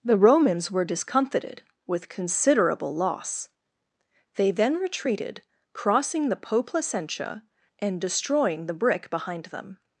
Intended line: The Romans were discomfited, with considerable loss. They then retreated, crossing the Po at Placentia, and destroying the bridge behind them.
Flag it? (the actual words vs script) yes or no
yes